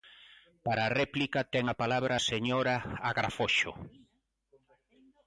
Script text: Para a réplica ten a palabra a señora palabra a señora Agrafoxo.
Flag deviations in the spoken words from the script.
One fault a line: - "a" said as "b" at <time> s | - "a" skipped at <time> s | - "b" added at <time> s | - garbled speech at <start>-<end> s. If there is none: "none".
- "palabra a señora" skipped at 2.7 s